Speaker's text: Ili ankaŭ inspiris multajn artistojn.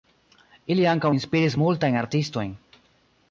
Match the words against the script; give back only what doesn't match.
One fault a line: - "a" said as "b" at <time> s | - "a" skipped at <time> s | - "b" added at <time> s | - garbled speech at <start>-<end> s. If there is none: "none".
none